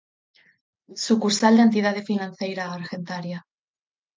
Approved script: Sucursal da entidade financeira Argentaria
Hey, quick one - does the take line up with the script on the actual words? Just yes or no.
yes